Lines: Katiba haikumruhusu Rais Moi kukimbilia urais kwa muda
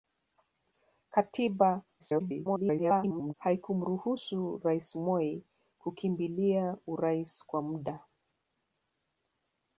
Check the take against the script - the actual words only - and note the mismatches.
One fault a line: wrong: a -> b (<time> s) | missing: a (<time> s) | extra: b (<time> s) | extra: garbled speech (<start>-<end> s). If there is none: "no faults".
extra: garbled speech (2.0-3.3 s)